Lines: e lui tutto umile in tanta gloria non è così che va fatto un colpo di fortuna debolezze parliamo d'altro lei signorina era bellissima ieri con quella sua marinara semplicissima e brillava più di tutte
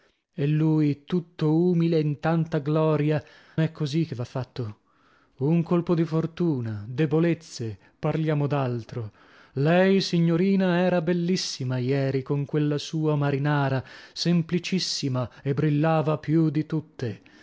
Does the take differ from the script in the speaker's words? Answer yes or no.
yes